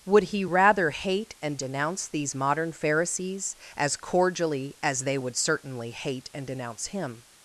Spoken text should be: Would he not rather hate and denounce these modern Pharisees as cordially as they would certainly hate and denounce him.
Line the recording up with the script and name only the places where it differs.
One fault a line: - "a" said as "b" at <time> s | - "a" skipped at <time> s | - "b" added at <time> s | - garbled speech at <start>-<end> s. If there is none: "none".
- "not" skipped at 0.5 s